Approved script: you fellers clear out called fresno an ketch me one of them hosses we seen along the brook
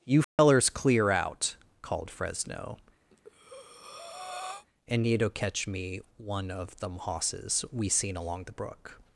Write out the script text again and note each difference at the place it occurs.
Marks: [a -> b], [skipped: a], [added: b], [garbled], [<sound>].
you fellers [dropout] clear out called fresno [breath] [an ketch -> and need to catch] me one of them hosses we seen along the brook